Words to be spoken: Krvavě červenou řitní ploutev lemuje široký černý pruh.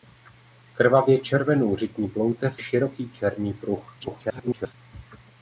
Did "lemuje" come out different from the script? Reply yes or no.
yes